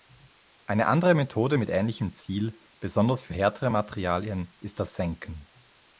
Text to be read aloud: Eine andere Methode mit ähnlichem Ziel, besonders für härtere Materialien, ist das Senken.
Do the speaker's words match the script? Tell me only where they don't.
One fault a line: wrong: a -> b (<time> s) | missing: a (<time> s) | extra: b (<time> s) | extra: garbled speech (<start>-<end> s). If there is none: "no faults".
no faults